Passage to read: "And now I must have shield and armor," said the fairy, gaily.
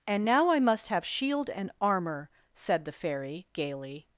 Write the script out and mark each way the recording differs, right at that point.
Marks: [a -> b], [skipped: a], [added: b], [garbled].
"And now I must have shield and armor," said the fairy, gaily.